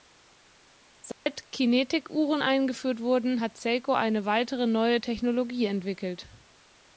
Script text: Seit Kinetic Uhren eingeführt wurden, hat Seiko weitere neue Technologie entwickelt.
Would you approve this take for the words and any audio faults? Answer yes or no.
no